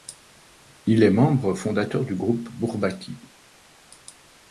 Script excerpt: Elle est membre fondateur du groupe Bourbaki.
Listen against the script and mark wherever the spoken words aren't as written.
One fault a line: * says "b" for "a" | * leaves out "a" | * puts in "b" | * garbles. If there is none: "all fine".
* says "Il" for "Elle"